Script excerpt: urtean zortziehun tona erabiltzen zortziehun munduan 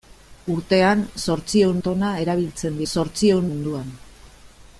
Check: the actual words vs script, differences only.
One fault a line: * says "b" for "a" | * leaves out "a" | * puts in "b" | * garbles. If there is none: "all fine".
all fine